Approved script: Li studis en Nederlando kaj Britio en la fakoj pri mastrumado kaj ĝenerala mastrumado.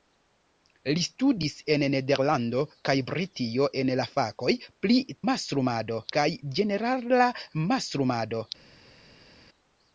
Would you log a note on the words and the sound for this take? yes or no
no